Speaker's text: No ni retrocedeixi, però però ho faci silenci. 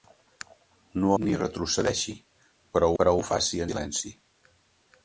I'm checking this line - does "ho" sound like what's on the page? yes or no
yes